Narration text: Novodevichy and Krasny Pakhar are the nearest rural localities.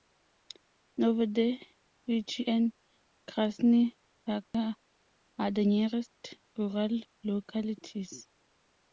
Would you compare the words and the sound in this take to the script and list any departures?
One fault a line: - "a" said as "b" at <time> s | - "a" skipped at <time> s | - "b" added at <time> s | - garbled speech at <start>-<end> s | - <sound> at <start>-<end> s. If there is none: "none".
- dropout at 4.4-4.5 s